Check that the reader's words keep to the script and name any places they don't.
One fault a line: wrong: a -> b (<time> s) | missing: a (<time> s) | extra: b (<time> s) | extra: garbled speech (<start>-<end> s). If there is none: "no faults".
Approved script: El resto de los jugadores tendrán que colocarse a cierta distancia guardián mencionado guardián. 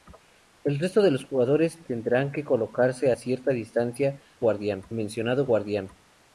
no faults